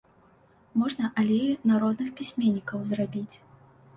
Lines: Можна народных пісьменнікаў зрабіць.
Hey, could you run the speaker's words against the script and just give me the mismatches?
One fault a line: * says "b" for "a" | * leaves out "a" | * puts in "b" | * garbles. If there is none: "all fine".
* puts in "алею"